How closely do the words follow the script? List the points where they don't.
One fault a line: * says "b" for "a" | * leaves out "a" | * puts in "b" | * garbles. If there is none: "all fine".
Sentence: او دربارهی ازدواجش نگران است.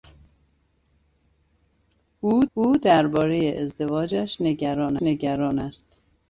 * puts in "او"
* puts in "نگران"